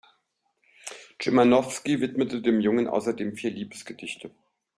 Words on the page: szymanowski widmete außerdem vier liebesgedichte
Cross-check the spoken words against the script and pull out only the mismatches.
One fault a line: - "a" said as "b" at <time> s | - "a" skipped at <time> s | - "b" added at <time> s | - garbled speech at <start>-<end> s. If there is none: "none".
- "dem jungen" added at 2.4 s